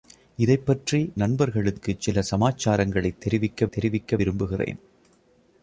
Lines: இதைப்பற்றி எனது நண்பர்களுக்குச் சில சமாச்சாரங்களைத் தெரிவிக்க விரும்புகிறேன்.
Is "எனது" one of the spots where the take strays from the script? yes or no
yes